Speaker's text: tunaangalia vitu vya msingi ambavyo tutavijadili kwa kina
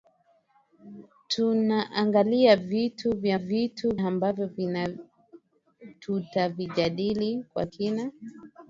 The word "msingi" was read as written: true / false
false